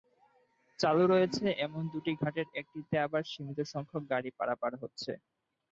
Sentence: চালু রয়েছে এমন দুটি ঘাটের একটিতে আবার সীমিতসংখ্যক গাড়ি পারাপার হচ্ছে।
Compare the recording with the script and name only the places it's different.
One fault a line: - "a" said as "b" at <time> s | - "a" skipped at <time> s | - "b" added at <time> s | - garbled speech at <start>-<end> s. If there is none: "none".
none